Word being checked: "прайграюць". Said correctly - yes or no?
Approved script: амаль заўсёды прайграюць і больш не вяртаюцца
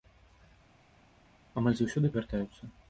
no